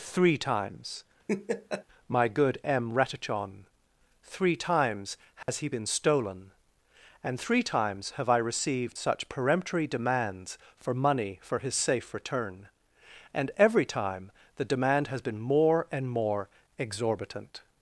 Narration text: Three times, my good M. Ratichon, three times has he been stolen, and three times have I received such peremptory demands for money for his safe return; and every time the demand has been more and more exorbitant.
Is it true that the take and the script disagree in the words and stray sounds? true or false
true